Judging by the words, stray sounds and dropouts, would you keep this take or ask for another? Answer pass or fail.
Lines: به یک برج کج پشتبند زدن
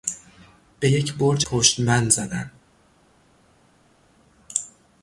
fail